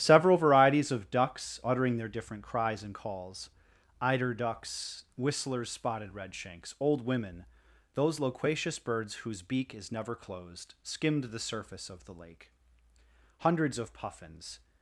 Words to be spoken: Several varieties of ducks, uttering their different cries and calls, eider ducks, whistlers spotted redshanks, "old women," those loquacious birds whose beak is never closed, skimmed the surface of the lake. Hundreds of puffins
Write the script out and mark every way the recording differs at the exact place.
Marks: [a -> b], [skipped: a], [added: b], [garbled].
Several varieties of ducks, uttering their different cries and calls, eider ducks, whistlers spotted redshanks, "old women," those loquacious birds whose beak is never closed, skimmed the surface of the lake. Hundreds of puffins